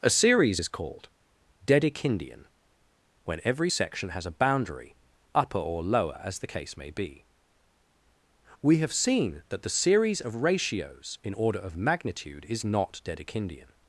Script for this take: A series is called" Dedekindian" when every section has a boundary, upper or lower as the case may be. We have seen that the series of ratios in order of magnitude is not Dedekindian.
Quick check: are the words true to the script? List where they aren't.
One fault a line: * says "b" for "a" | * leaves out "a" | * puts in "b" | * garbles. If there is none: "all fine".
all fine